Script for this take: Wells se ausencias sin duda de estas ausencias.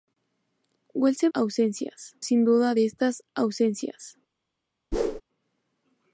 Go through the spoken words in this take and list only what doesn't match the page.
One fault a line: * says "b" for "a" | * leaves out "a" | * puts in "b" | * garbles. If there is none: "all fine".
all fine